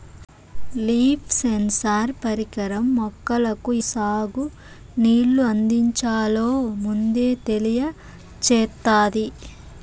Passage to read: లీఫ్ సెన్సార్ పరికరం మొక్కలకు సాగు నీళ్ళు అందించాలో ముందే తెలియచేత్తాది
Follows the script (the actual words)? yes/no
yes